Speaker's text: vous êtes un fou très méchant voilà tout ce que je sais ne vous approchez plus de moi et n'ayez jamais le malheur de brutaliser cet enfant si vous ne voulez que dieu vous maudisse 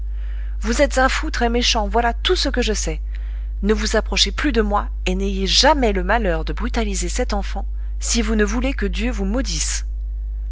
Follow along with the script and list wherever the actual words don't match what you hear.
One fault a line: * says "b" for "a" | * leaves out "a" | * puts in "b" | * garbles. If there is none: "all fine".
all fine